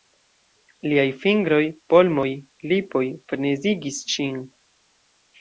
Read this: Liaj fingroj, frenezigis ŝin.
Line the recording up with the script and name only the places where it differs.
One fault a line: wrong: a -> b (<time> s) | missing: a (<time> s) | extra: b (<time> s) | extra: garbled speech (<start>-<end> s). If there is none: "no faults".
extra: polmoj lipoj (1.9 s)